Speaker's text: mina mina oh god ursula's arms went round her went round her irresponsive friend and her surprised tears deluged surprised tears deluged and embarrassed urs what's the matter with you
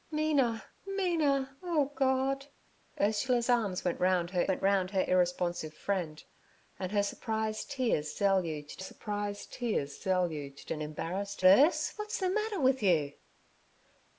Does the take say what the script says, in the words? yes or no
yes